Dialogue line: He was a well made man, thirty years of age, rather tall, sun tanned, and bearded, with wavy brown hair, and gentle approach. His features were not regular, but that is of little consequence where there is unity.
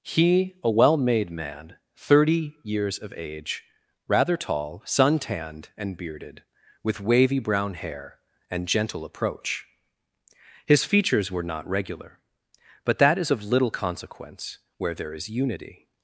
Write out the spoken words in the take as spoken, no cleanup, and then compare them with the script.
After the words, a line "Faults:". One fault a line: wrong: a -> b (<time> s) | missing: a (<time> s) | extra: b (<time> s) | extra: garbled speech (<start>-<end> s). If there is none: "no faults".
He a well made man, thirty years of age, rather tall, sun tanned, and bearded, with wavy brown hair, and gentle approach. His features were not regular, but that is of little consequence where there is unity.
Faults:
missing: was (0.6 s)